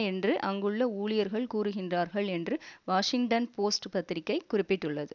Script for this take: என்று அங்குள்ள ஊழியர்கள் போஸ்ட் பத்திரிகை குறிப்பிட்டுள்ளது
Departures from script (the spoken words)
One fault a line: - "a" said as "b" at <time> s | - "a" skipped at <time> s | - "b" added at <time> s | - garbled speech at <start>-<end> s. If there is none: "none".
- "கூறுகின்றார்கள் என்று வாஷிங்டன்" added at 1.5 s